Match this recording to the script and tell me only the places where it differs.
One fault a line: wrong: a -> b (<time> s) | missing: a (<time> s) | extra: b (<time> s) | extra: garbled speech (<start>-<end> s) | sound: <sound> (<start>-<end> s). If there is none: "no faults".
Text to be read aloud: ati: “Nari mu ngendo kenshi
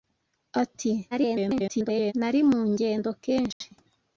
extra: garbled speech (1.1-2.1 s)
sound: dropout (3.5-3.6 s)